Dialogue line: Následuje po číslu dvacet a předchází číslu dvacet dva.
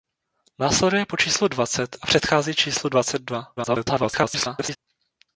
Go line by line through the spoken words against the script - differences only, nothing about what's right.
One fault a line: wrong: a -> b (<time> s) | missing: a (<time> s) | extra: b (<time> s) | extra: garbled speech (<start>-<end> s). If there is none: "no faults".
extra: garbled speech (3.6-4.8 s)